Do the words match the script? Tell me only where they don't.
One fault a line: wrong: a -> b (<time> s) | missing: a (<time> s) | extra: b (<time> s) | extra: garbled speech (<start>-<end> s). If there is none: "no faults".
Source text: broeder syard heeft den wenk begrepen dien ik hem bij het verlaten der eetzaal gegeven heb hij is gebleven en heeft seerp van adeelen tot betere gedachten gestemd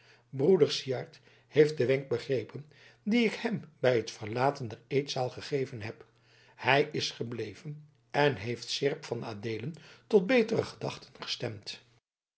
no faults